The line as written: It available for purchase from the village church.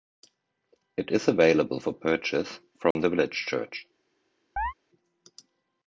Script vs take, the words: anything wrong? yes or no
yes